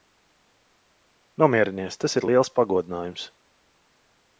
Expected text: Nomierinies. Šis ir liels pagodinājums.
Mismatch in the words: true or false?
true